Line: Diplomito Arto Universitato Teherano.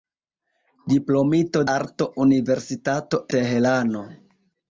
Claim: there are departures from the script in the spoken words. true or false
false